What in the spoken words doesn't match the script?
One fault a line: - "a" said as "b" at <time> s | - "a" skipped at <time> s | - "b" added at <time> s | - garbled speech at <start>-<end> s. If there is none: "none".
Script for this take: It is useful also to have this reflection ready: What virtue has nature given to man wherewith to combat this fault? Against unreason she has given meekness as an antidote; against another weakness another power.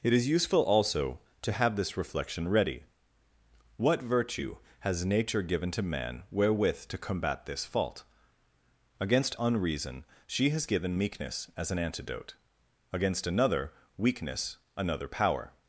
none